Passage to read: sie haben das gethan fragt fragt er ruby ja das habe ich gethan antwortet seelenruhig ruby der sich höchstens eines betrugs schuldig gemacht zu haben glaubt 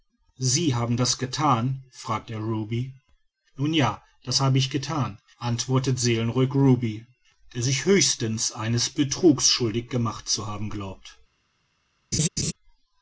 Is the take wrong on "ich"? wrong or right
right